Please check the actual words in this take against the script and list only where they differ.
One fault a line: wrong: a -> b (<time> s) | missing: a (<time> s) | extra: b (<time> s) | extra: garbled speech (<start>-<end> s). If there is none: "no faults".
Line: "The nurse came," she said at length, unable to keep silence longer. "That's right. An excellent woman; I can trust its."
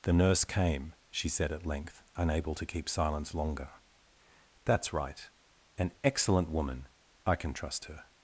wrong: its -> her (7.9 s)